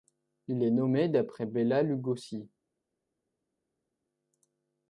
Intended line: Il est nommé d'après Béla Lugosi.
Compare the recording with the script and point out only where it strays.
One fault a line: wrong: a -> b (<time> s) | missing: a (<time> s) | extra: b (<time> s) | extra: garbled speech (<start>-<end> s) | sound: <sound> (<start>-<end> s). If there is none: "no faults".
no faults